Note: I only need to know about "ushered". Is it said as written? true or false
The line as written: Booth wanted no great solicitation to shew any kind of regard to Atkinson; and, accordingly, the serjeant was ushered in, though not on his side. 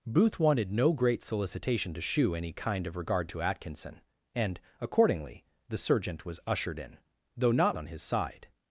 true